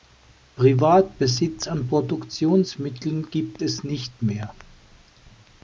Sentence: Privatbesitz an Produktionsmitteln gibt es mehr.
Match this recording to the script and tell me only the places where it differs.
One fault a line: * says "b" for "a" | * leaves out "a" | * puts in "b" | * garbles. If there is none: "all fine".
* puts in "nicht"